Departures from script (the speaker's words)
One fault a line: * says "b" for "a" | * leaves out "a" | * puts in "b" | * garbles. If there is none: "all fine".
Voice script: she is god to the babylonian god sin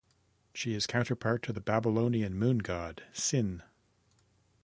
* says "counterpart" for "god"
* puts in "moon"